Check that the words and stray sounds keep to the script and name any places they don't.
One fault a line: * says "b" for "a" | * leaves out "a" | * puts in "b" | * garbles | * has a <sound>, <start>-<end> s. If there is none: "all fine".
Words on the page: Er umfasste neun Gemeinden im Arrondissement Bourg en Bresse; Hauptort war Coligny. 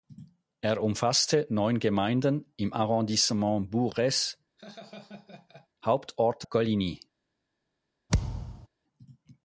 * leaves out "en"
* has a laugh, 4.6-5.7 s
* leaves out "war"
* has a thud, 8.1-8.7 s